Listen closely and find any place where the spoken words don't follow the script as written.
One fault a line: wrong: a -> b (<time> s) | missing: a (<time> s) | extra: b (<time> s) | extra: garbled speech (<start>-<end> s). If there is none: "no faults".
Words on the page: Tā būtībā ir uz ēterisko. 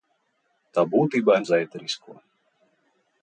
no faults